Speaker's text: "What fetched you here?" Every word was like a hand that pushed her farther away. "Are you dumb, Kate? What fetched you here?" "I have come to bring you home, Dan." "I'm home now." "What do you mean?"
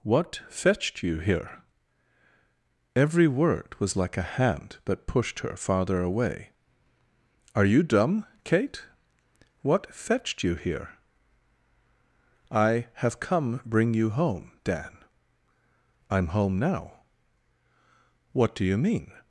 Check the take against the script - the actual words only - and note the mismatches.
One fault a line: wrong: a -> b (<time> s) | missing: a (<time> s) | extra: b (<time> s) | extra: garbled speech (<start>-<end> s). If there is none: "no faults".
missing: to (13.6 s)